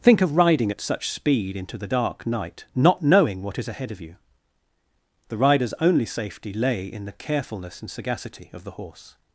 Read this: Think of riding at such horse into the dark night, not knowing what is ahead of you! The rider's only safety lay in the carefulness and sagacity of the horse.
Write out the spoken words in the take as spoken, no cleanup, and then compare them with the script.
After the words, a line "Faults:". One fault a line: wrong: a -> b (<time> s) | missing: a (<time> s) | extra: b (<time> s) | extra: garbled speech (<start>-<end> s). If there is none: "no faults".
Think of riding at such speed into the dark night, not knowing what is ahead of you! The rider's only safety lay in the carefulness and sagacity of the horse.
Faults:
wrong: horse -> speed (1.1 s)